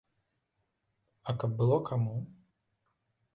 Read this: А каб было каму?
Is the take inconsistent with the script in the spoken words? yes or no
no